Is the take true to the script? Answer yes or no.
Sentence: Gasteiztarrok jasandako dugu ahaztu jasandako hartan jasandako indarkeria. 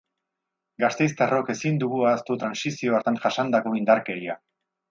no